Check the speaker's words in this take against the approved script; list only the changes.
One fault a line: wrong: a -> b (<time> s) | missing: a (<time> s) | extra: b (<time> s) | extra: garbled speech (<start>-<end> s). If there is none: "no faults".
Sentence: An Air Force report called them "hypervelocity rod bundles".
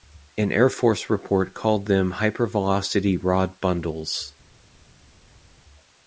no faults